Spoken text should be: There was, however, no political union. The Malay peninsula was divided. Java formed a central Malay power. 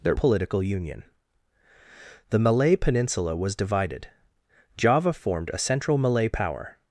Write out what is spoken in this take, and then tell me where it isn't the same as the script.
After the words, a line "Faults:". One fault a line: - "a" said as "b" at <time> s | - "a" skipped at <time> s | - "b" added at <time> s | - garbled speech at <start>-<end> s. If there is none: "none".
There political union. The Malay peninsula was divided. Java formed a central Malay power.
Faults:
- "was however no" skipped at 0.1 s